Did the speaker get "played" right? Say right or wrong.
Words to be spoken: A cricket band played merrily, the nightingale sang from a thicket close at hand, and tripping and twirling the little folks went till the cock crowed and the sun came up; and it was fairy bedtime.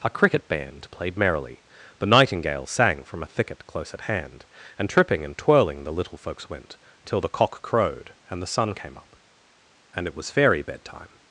right